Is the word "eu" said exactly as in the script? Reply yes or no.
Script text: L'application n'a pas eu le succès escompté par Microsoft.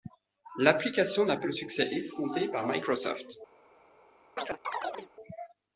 no